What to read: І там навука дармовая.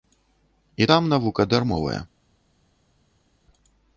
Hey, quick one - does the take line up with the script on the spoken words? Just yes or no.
yes